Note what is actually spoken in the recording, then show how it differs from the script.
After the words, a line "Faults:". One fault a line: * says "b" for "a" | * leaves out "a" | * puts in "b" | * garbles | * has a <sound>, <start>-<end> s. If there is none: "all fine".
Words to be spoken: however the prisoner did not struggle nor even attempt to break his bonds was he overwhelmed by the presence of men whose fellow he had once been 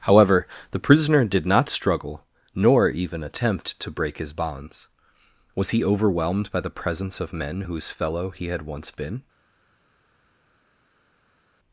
however the prisoner did not struggle nor even attempt to break his bonds was he overwhelmed by the presence of men whose fellow he had once been
Faults:
all fine